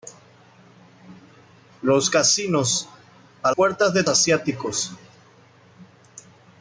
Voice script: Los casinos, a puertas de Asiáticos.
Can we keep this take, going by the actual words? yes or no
yes